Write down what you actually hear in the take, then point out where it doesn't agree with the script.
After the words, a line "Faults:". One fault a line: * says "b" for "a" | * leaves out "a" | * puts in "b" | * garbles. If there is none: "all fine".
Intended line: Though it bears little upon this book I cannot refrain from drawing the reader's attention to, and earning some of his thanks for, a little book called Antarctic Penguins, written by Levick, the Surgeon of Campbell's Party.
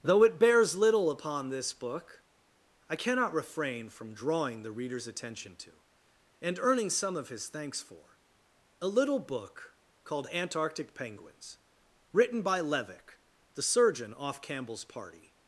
Though it bears little upon this book I cannot refrain from drawing the reader's attention to, and earning some of his thanks for, a little book called Antarctic Penguins, written by Levick, the Surgeon off Campbell's Party.
Faults:
* says "off" for "of"